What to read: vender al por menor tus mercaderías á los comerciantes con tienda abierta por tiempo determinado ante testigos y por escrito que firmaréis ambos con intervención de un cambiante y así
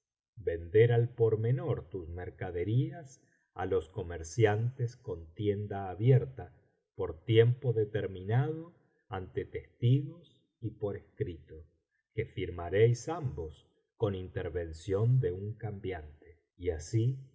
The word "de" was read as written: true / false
true